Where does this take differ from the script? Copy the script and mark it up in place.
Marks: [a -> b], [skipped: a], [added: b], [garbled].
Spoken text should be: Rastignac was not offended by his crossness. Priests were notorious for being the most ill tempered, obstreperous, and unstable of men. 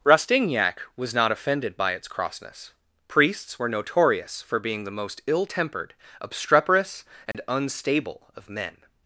Rastignac was not offended by [his -> its] crossness. Priests were notorious for being the most ill tempered, obstreperous, and unstable of men.